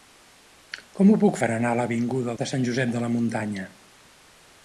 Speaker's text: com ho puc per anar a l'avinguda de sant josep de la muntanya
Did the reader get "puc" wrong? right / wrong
right